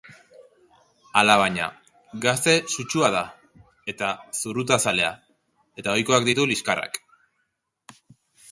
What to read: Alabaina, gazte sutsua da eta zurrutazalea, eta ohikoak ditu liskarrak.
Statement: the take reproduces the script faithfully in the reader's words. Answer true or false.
true